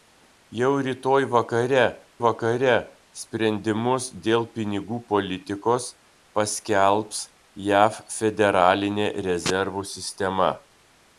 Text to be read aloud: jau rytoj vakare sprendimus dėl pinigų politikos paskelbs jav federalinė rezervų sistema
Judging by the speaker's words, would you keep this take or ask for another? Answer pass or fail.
fail